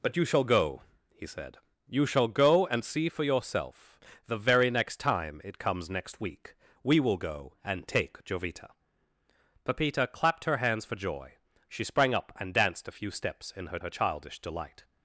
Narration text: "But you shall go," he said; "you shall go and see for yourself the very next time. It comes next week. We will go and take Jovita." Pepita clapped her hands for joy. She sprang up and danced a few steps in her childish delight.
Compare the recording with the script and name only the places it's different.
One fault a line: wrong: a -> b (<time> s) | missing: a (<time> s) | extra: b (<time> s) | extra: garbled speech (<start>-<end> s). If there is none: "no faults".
extra: her (13.8 s)